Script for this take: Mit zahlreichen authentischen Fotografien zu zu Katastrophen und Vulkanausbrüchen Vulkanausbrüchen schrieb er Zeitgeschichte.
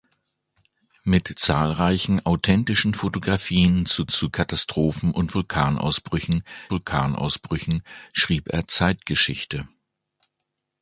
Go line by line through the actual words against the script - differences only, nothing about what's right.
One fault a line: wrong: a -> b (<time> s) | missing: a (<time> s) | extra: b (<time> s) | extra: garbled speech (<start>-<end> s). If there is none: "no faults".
no faults